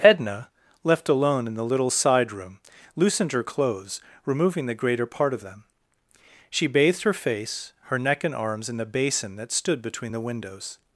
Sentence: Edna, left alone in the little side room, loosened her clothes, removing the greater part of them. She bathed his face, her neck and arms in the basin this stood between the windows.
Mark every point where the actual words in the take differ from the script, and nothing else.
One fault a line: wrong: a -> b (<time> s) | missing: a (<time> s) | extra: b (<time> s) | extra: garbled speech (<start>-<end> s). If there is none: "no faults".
wrong: his -> her (7.0 s)
wrong: this -> that (9.4 s)